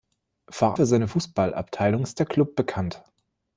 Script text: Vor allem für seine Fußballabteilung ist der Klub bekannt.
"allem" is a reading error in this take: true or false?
true